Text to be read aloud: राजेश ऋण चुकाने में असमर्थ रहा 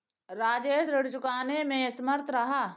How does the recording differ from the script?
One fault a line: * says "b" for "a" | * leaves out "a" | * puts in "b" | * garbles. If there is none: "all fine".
all fine